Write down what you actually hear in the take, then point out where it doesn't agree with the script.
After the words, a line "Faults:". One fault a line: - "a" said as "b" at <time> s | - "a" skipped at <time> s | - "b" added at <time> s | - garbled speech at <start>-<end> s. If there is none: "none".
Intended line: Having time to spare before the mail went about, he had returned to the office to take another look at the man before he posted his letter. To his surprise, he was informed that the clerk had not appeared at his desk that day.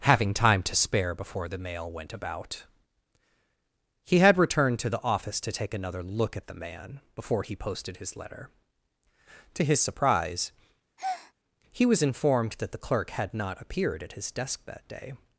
Having time to spare before the mail went about, he had returned to the office to take another look at the man before he posted his letter. To his surprise, he was informed that the clerk had not appeared at his desk that day.
Faults:
none